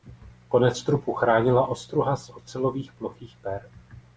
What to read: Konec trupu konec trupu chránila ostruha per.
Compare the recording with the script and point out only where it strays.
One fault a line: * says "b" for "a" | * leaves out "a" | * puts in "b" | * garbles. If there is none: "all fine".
* says "chránila ostruha z ocelových plochých" for "konec trupu chránila ostruha"